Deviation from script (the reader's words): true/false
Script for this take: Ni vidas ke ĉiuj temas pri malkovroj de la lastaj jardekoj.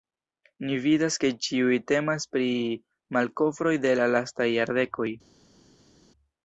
false